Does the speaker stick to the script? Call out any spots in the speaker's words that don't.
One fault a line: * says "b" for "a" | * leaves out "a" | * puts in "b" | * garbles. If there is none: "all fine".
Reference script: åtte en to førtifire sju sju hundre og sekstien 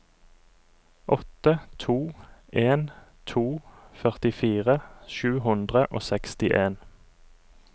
* puts in "to"
* leaves out "sju"